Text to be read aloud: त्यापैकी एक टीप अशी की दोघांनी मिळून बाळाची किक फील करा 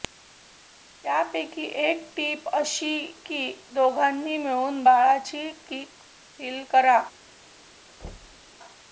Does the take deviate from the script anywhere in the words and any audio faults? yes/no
yes